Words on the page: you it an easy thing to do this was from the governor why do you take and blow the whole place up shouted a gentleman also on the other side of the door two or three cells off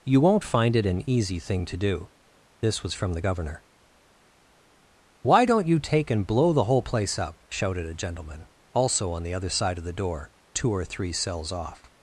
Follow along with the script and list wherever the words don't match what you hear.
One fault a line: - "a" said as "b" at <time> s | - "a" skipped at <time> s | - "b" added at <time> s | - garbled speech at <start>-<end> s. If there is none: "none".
- "won't find" added at 0.2 s
- "do" said as "don't" at 5.4 s